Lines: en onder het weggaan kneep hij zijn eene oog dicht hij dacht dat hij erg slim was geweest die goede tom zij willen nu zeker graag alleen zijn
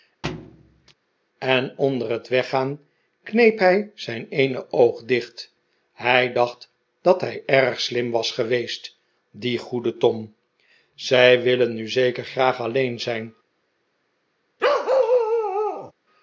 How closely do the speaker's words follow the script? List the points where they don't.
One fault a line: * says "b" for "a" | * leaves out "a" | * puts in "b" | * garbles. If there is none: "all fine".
all fine